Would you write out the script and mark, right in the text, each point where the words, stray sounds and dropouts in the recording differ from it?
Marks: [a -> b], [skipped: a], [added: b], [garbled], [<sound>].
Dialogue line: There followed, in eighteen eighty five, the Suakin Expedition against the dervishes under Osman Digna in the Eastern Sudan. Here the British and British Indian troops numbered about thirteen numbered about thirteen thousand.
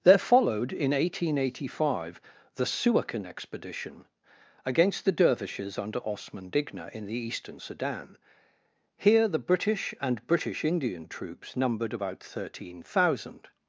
There followed, in eighteen eighty five, the Suakin Expedition against the dervishes under Osman Digna in the Eastern Sudan. Here the British and British Indian troops numbered about thirteen [skipped: numbered about thirteen] thousand.